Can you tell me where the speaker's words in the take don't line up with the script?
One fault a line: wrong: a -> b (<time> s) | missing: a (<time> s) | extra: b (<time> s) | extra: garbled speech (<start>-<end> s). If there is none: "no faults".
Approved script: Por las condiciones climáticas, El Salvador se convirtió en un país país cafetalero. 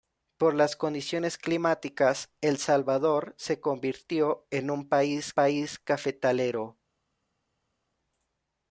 no faults